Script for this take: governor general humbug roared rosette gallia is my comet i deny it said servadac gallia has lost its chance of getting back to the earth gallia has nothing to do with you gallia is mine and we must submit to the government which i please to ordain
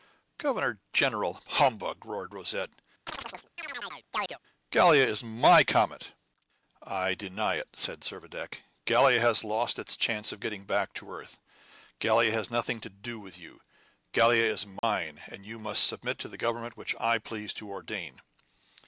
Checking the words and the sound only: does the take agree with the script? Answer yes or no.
no